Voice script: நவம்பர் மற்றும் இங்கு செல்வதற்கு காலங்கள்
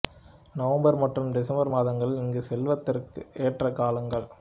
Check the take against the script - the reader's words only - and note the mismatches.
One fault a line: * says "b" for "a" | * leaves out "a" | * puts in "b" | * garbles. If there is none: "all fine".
* puts in "டிசம்பர் மாதங்கள்"
* puts in "ஏற்ற"